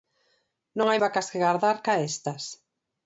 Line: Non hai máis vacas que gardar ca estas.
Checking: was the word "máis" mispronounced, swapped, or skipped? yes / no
yes